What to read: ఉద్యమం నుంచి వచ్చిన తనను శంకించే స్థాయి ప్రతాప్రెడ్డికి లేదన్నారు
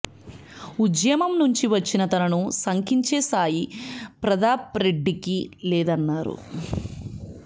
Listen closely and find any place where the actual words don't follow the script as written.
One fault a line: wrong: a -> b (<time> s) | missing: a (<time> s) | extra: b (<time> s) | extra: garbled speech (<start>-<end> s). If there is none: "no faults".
no faults